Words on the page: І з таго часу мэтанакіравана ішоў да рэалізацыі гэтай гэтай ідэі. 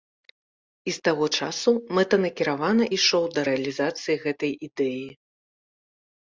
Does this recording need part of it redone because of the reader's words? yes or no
yes